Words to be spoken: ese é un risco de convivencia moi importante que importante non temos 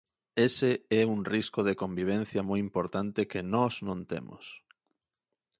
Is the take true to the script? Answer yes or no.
no